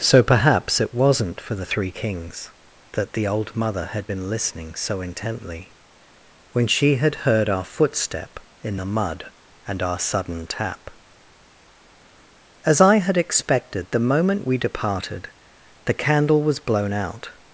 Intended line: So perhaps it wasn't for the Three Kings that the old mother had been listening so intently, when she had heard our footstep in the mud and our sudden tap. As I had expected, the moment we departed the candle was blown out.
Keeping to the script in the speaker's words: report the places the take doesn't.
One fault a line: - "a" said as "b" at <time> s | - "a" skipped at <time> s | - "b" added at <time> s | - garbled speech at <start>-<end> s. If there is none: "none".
none